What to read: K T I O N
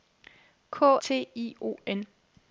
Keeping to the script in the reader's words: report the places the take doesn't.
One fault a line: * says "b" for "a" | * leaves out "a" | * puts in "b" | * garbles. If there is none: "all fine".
all fine